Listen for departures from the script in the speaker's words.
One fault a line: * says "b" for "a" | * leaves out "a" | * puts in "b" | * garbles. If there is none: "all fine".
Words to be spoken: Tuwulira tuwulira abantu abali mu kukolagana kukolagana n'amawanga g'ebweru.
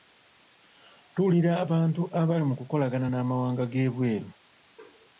* leaves out "tuwulira"
* leaves out "kukolagana"